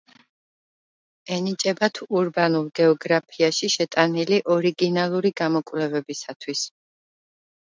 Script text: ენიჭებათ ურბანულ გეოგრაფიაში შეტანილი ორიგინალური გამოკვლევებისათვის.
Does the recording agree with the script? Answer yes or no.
yes